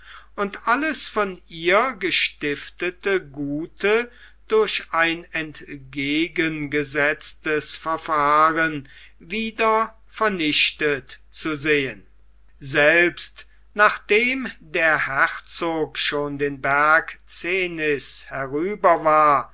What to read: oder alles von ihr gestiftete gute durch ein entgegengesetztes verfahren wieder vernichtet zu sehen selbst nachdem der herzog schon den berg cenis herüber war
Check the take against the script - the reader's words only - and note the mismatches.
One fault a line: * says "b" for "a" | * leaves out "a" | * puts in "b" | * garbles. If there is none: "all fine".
* says "und" for "oder"